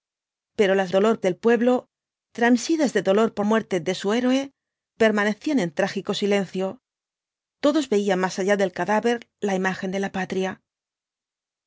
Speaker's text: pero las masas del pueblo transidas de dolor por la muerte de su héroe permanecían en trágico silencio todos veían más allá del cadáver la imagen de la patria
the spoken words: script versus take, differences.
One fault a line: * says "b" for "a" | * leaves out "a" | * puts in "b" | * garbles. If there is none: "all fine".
* says "dolor" for "masas"
* leaves out "la"